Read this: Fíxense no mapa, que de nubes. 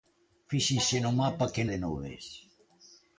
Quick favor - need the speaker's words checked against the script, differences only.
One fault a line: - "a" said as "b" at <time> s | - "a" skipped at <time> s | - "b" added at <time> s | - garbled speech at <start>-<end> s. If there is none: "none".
none